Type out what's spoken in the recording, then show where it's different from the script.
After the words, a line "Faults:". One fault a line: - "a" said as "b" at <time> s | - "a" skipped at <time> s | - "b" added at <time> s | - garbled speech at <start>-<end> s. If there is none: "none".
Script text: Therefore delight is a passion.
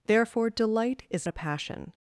Therefore delight is a passion.
Faults:
none